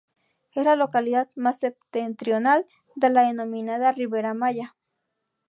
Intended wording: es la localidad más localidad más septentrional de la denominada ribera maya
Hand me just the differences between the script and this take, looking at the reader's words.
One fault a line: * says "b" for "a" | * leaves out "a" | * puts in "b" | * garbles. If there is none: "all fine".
* leaves out "localidad más"